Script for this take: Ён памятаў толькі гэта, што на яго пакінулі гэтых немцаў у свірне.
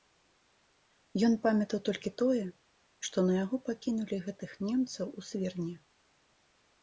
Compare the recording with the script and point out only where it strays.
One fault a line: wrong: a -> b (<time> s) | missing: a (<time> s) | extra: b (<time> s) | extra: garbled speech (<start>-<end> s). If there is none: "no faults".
wrong: гэта -> тое (2.2 s)